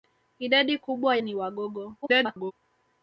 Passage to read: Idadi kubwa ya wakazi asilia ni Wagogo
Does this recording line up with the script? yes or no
no